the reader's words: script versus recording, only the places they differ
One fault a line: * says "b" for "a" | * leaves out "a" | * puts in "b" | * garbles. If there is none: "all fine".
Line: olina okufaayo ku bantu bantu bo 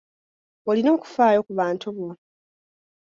* leaves out "bantu"